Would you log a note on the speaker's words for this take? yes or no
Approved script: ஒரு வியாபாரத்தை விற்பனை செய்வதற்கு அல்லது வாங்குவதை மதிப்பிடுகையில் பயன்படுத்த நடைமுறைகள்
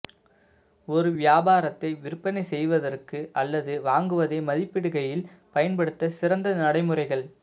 yes